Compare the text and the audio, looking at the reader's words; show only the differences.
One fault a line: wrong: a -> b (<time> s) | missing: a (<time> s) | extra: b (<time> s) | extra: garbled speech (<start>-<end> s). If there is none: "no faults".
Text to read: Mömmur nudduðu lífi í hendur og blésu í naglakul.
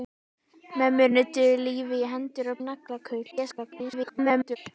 missing: blésu (2.6 s)
extra: garbled speech (3.3-4.6 s)